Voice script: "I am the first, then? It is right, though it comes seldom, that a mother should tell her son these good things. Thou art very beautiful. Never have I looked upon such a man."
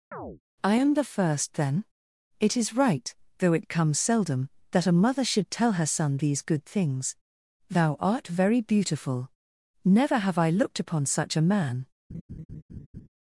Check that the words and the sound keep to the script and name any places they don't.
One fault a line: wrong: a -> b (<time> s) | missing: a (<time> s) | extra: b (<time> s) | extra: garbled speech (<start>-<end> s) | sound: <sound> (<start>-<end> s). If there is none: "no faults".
sound: chirp (0.1-0.4 s)
sound: laugh (12.1-13.1 s)